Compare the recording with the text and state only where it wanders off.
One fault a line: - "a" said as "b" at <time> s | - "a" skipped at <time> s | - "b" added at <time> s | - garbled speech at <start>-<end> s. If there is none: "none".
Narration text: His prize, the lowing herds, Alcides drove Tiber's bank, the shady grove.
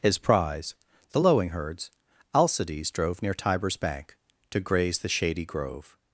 - "Near" added at 3.2 s
- "to graze" added at 4.5 s